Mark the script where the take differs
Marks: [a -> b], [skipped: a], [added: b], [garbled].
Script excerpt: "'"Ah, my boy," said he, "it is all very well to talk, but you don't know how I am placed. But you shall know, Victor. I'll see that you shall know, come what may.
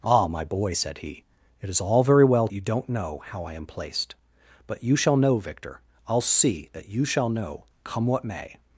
"'"Ah, my boy," said he, "it is all very well [skipped: to talk, but] you don't know how I am placed. But you shall know, Victor. I'll see that you shall know, come what may.